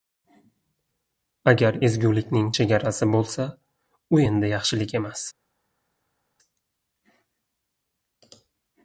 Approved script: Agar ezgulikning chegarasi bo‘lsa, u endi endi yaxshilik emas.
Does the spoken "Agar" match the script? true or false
true